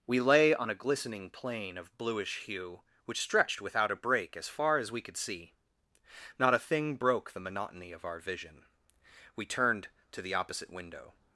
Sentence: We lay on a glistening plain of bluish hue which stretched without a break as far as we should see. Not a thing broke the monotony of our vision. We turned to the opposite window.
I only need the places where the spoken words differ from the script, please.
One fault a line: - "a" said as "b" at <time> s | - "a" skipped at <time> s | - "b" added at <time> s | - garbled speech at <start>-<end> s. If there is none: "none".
- "should" said as "could" at 5.0 s